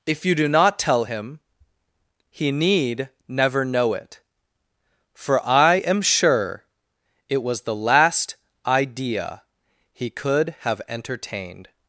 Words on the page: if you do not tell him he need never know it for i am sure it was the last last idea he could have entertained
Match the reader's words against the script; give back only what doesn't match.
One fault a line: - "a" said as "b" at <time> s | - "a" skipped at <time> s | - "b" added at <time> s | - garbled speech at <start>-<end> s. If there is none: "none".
- "last" skipped at 8.4 s